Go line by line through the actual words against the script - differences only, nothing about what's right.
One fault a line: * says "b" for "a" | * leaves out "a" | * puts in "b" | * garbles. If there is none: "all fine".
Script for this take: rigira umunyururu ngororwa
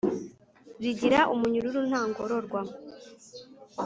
* puts in "nta"